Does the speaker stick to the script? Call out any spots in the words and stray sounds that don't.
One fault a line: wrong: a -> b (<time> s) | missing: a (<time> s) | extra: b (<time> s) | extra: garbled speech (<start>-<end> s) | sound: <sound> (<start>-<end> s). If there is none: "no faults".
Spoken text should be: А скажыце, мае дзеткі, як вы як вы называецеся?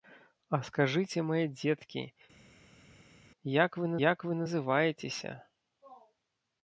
no faults